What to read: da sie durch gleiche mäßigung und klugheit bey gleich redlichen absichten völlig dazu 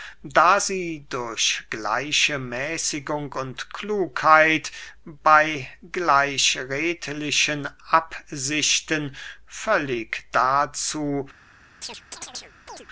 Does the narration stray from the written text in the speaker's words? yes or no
no